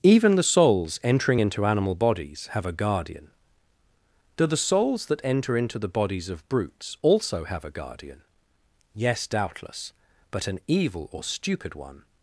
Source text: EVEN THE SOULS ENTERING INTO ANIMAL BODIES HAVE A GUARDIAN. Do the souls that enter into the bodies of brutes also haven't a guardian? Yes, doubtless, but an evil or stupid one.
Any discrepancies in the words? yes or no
yes